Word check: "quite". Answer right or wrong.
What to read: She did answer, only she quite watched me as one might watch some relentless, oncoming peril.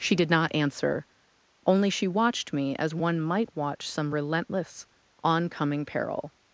wrong